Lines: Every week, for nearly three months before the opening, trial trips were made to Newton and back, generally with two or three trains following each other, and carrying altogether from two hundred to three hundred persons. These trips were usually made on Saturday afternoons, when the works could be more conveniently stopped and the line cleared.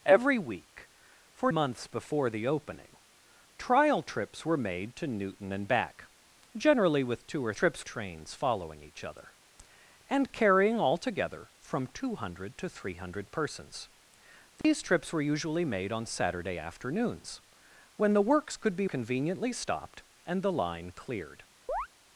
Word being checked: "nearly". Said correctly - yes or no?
no